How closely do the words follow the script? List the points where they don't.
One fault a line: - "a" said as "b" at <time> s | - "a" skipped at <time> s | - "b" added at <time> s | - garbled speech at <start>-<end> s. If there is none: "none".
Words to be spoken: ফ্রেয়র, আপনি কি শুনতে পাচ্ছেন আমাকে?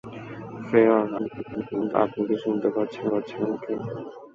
- garbled speech at 1.2-1.9 s
- "পাচ্ছেন" added at 3.1 s